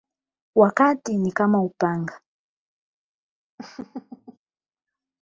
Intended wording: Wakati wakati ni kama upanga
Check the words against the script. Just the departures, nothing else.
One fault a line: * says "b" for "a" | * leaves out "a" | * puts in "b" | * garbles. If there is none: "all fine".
* leaves out "wakati"